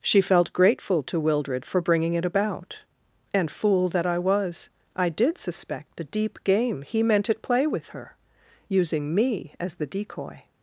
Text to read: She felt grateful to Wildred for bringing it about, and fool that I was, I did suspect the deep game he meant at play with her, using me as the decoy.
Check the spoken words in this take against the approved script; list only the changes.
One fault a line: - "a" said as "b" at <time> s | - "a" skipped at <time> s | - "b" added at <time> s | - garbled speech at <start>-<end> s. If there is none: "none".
none